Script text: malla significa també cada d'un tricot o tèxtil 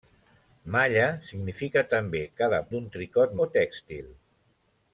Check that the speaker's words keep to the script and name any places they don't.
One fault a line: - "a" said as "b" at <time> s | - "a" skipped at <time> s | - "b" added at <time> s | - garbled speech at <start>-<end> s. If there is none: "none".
none